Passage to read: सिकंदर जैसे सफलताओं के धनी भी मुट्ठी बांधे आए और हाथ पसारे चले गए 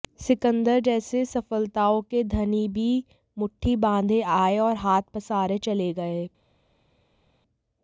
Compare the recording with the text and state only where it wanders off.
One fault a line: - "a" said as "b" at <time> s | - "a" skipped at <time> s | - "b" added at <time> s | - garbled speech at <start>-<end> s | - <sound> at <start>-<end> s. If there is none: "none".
none